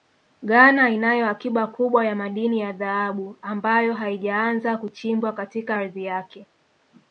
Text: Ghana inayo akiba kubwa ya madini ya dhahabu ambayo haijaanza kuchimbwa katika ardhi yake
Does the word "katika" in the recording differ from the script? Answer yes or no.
no